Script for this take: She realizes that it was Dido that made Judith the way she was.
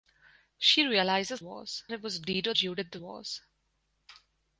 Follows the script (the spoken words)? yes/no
no